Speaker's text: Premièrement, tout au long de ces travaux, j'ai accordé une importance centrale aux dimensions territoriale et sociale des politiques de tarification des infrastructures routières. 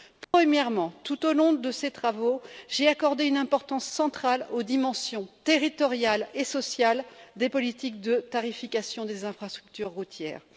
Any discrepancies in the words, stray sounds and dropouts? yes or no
yes